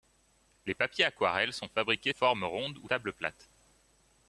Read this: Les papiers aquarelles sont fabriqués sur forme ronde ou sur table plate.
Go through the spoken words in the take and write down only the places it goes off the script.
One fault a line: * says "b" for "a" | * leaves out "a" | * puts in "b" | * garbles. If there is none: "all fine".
* leaves out "sur"
* leaves out "sur"